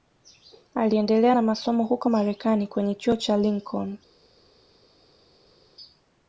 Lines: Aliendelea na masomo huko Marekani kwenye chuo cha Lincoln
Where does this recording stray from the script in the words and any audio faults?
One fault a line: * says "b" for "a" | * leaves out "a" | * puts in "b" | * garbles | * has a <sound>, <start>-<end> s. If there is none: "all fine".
all fine